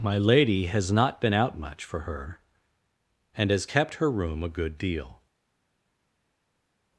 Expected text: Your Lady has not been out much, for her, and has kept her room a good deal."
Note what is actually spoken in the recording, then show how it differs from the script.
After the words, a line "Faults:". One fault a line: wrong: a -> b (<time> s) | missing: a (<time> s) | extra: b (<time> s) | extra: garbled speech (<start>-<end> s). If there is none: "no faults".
My Lady has not been out much, for her, and has kept her room a good deal."
Faults:
wrong: Your -> My (0.0 s)